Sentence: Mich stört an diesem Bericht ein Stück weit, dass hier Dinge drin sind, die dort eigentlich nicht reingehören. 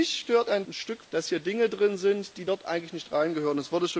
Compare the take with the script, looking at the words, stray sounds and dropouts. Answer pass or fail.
fail